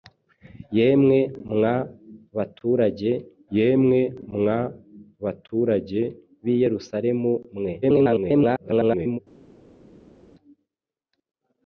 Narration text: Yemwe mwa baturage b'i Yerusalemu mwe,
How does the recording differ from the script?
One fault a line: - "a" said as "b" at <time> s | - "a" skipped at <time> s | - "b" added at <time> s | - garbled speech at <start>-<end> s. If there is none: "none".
- "yemwe mwa baturage" added at 3.6 s
- garbled speech at 7.8-9.2 s